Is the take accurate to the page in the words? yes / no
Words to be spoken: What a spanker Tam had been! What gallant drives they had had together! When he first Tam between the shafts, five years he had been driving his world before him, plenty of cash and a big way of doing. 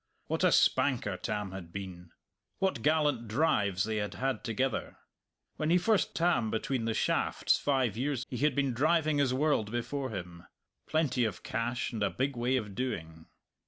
yes